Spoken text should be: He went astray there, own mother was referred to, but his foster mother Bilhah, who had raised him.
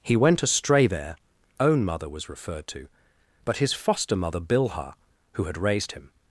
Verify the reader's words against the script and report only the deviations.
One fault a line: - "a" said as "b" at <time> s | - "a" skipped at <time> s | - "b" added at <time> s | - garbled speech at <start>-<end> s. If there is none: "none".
none